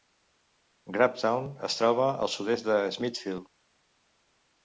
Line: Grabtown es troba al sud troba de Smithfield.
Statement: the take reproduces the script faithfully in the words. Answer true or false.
false